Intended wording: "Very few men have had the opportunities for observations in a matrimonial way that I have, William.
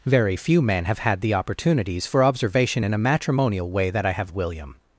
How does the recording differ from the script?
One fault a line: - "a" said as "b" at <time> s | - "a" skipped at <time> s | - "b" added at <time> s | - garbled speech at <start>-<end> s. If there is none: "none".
- "observations" said as "observation" at 2.2 s